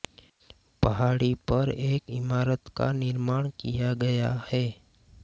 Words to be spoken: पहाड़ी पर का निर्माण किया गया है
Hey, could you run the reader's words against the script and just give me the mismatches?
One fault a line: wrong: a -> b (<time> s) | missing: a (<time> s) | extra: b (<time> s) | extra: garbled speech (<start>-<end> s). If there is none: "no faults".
extra: एक इमारत (1.7 s)